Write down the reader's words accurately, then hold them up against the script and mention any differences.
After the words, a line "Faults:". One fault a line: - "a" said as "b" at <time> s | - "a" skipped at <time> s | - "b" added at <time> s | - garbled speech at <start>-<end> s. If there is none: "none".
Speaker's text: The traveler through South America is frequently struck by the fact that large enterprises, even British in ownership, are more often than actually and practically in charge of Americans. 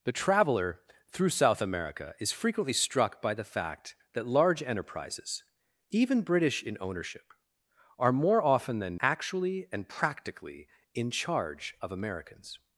The traveler through South America is frequently struck by the fact that large enterprises, even British in ownership, are more often than actually and practically in charge of Americans.
Faults:
none